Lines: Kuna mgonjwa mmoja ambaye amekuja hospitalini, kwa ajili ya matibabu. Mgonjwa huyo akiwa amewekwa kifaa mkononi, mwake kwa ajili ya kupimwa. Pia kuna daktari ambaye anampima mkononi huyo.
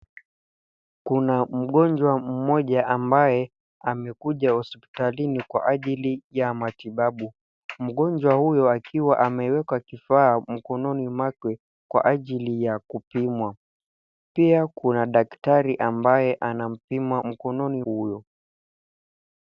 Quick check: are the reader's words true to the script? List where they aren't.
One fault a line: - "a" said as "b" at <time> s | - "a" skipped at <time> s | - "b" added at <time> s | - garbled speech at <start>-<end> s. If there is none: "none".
none